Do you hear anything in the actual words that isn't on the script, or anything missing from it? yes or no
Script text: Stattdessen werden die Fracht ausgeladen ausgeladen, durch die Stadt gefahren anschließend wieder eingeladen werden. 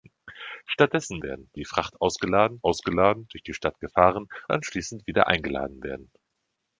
no